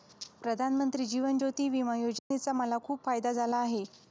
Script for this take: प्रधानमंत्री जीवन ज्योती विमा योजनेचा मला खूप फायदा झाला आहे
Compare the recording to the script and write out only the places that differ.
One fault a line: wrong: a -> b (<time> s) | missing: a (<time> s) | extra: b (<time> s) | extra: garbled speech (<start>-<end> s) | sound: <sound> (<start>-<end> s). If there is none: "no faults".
sound: dropout (2.2-2.3 s)